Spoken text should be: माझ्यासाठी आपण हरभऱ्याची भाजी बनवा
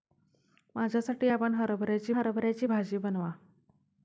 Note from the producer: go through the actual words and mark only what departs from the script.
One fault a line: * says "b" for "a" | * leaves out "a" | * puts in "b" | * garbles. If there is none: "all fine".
* puts in "हरभऱ्याची"